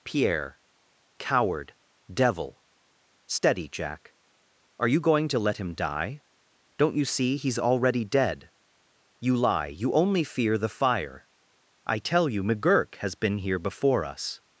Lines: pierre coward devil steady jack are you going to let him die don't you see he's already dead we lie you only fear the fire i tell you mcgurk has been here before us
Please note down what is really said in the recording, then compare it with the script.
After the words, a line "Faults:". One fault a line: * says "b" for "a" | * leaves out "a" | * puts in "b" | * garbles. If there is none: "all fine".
pierre coward devil steady jack are you going to let him die don't you see he's already dead you lie you only fear the fire i tell you mcgurk has been here before us
Faults:
* says "you" for "we"